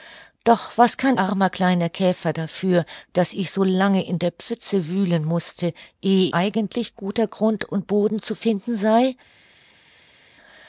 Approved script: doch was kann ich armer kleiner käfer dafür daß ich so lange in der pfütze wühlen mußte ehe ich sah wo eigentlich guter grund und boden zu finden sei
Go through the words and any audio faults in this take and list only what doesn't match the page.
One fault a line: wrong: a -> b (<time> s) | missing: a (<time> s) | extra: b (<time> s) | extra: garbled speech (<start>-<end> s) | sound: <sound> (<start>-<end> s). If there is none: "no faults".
missing: ich (1.1 s)
missing: ich sah wo (6.3 s)